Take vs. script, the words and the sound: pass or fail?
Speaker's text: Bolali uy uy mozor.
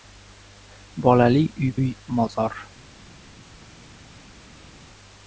pass